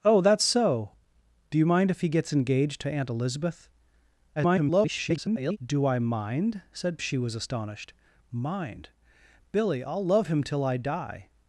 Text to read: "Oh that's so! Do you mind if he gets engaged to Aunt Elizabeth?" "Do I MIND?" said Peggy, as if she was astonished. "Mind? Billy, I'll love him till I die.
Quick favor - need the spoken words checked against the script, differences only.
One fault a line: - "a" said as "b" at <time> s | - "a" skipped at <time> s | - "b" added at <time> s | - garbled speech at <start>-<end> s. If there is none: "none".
- garbled speech at 4.3-5.6 s
- "Peggy as if" skipped at 7.0 s